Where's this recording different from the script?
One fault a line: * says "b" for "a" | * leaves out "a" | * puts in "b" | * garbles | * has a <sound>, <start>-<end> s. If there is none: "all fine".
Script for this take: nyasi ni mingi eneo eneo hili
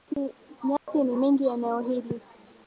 * has a dropout, 0.8-0.9 s
* leaves out "eneo"